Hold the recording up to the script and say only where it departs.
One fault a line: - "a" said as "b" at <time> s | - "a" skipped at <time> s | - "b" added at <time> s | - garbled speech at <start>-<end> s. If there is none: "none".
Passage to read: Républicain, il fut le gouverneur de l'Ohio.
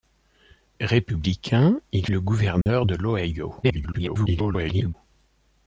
- "fut" skipped at 2.1 s
- garbled speech at 3.6-4.9 s